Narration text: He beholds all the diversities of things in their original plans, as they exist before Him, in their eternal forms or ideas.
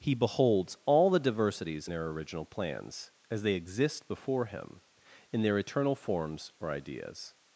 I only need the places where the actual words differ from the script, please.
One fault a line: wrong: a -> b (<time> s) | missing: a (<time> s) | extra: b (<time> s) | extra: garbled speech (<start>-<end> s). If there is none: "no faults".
missing: of things in (1.9 s)